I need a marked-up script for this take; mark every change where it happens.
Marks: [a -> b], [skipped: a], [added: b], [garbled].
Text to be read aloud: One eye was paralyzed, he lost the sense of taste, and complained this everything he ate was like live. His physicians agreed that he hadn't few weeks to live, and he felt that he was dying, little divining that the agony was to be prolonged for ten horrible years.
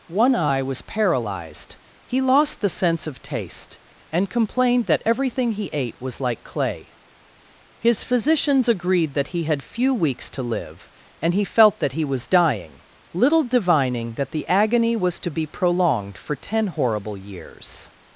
One eye was paralyzed, he lost the sense of taste, and complained [this -> that] everything he ate was like [live. -> clay] His physicians agreed that he [hadn't -> had] few weeks to live, and he felt that he was dying, little divining that the agony was to be prolonged for ten horrible years.